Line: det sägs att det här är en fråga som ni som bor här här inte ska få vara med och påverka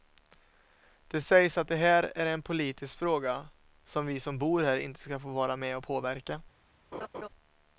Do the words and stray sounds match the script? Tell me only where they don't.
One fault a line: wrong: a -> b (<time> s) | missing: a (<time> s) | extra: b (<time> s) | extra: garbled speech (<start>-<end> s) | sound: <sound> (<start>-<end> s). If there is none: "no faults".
extra: politisk (2.4 s)
wrong: ni -> vi (4.1 s)
missing: här (4.8 s)
sound: laugh (6.9-7.3 s)